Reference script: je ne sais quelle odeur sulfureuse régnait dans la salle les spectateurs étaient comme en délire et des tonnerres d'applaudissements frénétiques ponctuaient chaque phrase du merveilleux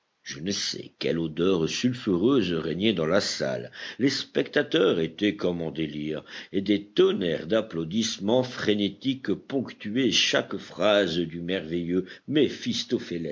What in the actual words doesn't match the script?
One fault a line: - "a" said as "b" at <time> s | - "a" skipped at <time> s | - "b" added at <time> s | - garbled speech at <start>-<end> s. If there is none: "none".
none